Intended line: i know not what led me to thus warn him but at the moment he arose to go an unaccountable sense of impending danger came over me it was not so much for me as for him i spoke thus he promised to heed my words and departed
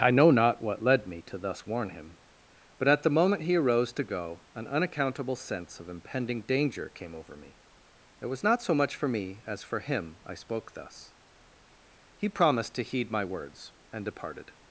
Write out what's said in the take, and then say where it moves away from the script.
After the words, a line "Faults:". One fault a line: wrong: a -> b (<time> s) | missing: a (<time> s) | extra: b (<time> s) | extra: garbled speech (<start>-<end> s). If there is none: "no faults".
i know not what led me to thus warn him but at the moment he arose to go an unaccountable sense of impending danger came over me it was not so much for me as for him i spoke thus he promised to heed my words and departed
Faults:
no faults